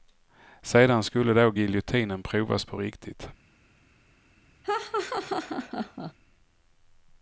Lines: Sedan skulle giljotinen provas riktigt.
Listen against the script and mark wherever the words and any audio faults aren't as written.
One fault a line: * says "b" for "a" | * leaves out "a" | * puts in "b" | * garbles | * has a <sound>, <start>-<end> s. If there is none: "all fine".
* puts in "då"
* puts in "på"
* has a laugh, 4.6-6.1 s